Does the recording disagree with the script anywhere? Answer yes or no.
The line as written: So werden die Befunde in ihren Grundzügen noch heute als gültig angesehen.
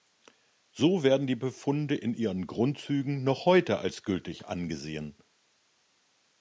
no